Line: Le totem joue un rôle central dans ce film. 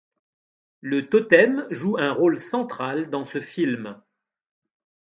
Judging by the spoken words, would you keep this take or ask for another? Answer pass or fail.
pass